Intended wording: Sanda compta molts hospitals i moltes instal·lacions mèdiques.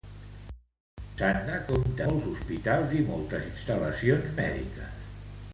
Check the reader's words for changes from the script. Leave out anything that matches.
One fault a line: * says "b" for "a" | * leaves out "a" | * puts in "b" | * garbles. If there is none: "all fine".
all fine